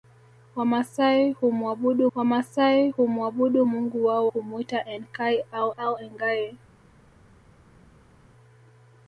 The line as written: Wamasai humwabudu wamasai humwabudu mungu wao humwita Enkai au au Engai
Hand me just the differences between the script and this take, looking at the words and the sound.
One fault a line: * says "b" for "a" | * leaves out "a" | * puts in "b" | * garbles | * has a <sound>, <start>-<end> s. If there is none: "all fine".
all fine